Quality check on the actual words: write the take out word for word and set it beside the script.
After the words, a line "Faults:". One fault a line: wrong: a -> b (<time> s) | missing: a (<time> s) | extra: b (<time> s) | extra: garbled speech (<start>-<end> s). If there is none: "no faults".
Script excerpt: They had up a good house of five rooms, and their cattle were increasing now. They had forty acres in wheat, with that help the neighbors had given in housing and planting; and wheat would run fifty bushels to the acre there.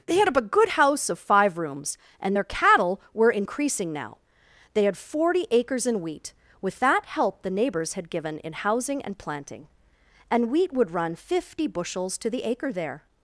They had up a good house of five rooms, and their cattle were increasing now. They had forty acres in wheat, with that help the neighbors had given in housing and planting; and wheat would run fifty bushels to the acre there.
Faults:
no faults